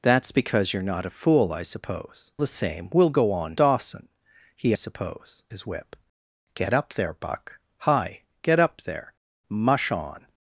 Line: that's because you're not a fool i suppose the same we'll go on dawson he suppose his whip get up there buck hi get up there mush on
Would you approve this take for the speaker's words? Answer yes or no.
yes